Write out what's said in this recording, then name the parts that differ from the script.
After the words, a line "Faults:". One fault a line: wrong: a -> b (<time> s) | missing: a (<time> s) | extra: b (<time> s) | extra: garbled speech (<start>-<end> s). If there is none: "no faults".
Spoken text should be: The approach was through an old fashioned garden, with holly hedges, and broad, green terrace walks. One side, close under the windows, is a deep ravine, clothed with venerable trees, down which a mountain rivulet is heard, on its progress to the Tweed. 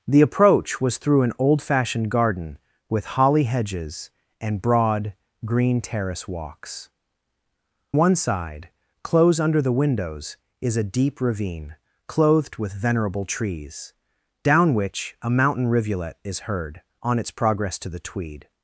The approach was through an old fashioned garden, with holly hedges, and broad, green terrace walks. One side, close under the windows, is a deep ravine, clothed with venerable trees, down which a mountain rivulet is heard, on its progress to the Tweed.
Faults:
no faults